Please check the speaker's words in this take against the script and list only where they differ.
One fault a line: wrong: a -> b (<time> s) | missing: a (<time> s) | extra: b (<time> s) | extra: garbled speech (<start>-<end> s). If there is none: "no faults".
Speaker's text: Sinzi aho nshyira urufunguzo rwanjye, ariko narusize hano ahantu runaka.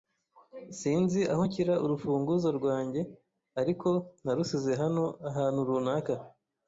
no faults